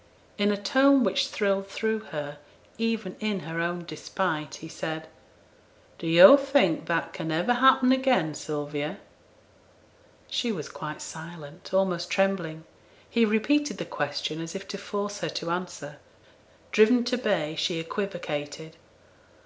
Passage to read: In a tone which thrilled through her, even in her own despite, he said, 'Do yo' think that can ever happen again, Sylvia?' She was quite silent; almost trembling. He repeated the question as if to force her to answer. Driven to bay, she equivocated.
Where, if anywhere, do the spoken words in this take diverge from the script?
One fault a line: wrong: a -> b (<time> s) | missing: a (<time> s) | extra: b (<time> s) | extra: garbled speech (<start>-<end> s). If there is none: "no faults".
no faults